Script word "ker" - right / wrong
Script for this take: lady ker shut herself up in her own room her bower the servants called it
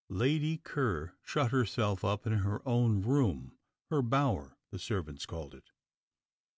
right